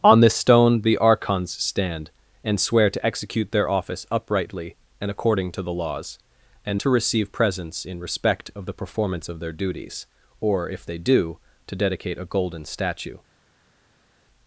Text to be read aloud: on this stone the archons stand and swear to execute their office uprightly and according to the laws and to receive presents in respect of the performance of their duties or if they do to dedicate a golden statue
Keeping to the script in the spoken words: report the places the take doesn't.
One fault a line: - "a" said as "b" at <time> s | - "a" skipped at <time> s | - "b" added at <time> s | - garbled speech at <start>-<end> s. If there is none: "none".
none